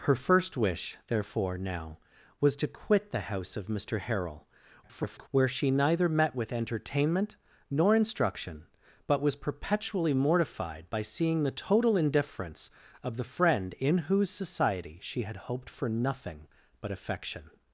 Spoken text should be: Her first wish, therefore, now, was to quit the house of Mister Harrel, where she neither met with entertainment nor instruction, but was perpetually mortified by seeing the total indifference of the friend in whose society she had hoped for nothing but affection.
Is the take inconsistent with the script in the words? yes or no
yes